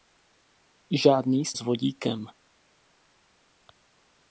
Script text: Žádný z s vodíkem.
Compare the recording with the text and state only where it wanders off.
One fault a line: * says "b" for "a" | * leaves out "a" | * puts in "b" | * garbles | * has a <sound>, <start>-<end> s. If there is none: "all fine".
all fine